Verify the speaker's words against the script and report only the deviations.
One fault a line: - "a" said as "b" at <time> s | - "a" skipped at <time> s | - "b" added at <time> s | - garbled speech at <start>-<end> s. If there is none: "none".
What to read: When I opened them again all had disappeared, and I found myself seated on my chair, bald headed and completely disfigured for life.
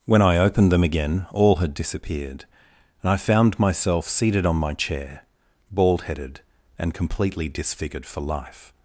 none